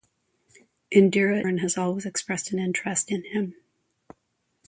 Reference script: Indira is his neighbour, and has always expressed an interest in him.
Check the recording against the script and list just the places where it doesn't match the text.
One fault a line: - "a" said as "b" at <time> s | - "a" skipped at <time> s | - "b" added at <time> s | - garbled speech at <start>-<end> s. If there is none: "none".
- "is his neighbour" skipped at 1.5 s